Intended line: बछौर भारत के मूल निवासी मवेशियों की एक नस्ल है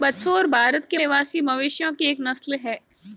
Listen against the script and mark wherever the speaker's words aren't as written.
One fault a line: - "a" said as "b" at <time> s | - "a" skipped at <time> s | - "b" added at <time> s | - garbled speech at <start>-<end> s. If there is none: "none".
- "मूल" skipped at 1.0 s